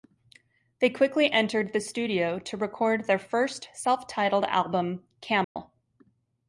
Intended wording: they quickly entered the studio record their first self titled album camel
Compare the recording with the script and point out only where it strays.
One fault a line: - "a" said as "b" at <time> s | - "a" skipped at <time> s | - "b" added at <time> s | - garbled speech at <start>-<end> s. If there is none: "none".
- "to" added at 2.4 s